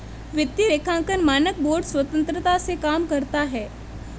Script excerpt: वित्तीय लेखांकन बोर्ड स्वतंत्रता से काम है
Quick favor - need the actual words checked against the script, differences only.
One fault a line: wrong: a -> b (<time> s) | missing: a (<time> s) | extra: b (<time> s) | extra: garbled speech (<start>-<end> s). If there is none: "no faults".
extra: मानक (1.2 s)
extra: करता (3.0 s)